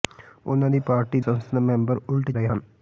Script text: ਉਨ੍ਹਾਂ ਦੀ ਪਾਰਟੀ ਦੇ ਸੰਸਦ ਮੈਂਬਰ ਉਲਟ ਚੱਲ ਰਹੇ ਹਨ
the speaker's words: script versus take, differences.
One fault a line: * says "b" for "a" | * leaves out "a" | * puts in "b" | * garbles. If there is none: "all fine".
* leaves out "ਦੇ"
* leaves out "ਚੱਲ"